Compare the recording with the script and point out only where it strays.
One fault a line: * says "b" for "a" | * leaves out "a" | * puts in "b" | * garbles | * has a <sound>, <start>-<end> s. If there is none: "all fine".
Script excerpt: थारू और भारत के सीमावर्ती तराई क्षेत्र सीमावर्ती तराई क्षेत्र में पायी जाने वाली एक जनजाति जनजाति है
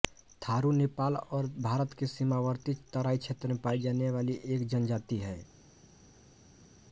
* puts in "नेपाल"
* leaves out "सीमावर्ती तराई क्षेत्र"
* leaves out "जनजाति"